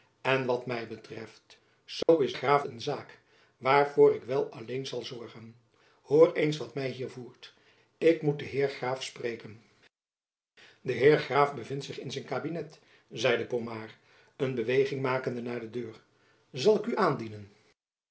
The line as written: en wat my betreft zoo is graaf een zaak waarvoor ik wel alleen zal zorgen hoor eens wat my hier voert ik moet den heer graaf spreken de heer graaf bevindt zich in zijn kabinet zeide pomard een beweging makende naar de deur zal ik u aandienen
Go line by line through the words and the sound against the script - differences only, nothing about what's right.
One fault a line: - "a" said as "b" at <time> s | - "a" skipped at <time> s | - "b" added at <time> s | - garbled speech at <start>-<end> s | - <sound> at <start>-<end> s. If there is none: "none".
- dropout at 2.0-2.1 s